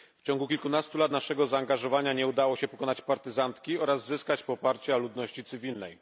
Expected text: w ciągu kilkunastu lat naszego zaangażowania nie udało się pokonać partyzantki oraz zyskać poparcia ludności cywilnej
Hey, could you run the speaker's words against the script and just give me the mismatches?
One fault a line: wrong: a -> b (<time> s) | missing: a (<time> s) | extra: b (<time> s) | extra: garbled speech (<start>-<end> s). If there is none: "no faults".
no faults